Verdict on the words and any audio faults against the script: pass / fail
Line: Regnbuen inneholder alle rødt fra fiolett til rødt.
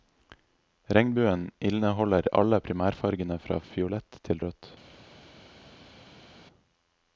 fail